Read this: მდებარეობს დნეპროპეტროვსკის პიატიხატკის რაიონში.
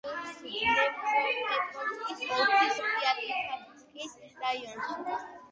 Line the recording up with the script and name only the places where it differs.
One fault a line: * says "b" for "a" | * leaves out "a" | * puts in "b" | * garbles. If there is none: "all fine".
* puts in "ოლქის"